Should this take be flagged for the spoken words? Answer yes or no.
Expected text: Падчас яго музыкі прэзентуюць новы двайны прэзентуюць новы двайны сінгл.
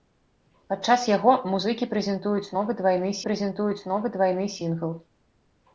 no